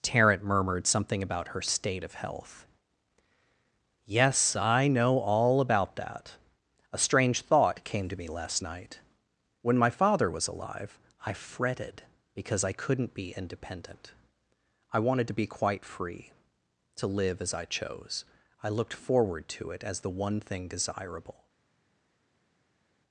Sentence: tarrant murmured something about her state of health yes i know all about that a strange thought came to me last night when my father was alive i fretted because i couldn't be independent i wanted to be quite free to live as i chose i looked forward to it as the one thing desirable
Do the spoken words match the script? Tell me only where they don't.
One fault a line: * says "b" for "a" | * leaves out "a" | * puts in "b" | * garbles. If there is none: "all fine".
all fine